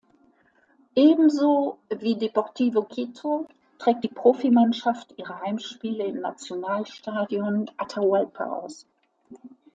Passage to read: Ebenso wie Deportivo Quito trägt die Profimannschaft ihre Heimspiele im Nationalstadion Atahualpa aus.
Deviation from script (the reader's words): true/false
false